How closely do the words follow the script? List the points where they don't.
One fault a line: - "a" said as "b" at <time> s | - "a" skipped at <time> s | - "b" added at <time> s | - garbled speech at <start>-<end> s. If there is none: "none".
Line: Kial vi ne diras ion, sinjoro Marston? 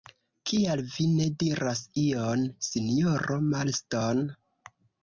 none